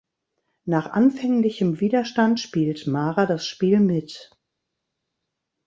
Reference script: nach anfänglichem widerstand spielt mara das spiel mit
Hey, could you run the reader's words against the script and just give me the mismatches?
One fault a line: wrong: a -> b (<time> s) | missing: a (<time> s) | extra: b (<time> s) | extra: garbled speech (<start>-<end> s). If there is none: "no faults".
no faults